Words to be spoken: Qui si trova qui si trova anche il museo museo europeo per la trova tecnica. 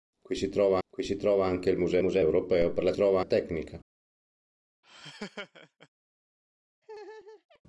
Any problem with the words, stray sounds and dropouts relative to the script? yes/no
yes